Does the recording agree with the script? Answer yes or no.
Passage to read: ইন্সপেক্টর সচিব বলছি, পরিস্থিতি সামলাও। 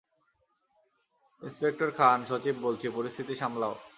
no